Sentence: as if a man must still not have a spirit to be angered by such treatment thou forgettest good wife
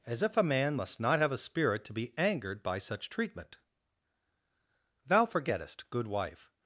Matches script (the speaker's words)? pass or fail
fail